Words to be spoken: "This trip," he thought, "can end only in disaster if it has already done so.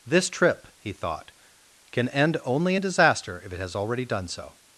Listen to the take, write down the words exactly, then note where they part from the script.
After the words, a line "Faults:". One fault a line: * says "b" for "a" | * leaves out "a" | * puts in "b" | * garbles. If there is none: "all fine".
"This trip," he thought, "can end only in disaster if it has already done so.
Faults:
all fine